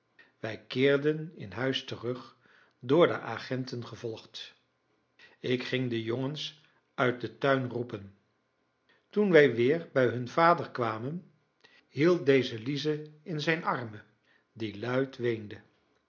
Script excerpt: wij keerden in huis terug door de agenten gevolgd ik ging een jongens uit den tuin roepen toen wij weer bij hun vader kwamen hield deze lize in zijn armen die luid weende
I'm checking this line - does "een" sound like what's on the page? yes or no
no